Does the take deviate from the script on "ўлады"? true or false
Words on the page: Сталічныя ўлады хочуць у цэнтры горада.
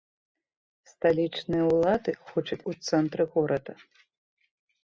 false